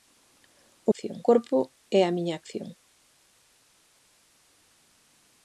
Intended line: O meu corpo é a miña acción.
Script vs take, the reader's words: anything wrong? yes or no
yes